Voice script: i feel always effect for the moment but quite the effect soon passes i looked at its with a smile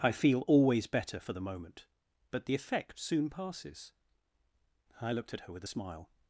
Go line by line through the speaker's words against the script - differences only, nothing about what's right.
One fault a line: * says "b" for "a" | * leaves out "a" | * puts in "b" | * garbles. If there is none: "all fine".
* says "better" for "effect"
* leaves out "quite"
* says "her" for "its"